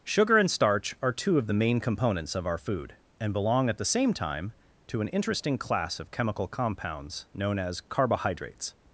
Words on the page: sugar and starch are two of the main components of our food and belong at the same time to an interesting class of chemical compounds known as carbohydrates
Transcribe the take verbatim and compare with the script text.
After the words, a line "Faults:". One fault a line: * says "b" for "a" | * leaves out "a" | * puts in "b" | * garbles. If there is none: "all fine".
sugar and starch are two of the main components of our food and belong at the same time to an interesting class of chemical compounds known as carbohydrates
Faults:
all fine